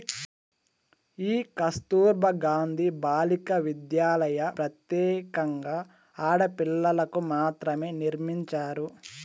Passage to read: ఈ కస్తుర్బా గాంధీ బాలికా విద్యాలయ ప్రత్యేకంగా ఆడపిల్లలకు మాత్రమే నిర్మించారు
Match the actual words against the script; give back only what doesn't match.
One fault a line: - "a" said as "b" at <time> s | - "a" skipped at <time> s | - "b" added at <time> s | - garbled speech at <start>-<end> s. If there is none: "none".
none